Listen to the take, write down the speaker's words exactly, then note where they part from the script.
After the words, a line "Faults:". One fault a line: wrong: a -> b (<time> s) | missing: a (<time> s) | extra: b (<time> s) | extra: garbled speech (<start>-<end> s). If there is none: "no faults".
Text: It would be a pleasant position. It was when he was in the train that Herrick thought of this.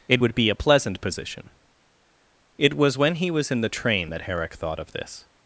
It would be a pleasant position. It was when he was in the train that Herrick thought of this.
Faults:
no faults